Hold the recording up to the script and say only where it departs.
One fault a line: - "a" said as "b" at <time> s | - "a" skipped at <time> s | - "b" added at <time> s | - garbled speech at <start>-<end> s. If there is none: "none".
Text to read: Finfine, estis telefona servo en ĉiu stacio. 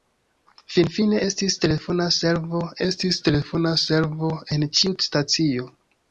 - "estis telefona servo" added at 2.9 s